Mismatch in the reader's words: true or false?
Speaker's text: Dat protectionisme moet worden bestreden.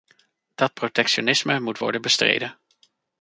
false